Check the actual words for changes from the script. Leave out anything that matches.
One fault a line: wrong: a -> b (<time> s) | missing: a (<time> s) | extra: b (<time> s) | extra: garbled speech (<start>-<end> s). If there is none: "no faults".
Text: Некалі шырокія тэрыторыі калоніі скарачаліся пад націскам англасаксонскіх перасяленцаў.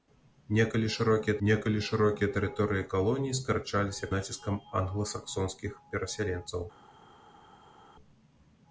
extra: некалі шырокія (1.5 s)
missing: пад (4.1 s)